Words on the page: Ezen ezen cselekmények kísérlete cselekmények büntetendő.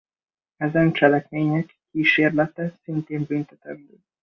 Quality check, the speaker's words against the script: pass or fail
fail